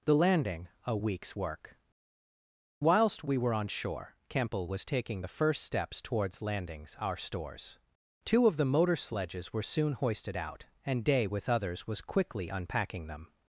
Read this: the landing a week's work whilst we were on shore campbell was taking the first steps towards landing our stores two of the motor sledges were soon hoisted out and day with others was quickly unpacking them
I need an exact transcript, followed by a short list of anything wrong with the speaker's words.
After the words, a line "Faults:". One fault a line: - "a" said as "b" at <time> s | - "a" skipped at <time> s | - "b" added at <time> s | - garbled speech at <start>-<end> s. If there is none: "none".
the landing a week's work whilst we were on shore campbell was taking the first steps towards landings our stores two of the motor sledges were soon hoisted out and day with others was quickly unpacking them
Faults:
- "landing" said as "landings" at 6.4 s